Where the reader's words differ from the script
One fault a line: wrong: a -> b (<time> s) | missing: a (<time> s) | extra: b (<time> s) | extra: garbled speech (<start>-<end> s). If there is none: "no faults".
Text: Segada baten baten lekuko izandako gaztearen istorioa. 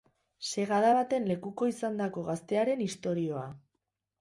missing: baten (1.3 s)